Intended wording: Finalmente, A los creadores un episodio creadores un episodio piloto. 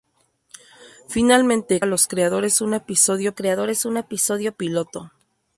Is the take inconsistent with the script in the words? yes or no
no